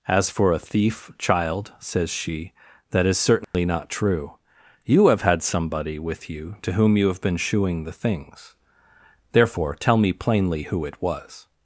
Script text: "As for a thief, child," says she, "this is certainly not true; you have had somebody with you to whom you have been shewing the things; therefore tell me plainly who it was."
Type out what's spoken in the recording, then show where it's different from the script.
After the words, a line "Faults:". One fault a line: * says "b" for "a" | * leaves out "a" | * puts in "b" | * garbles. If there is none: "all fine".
"As for a thief, child," says she, "that is certainly not true; you have had somebody with you to whom you have been shewing the things; therefore tell me plainly who it was."
Faults:
* says "that" for "this"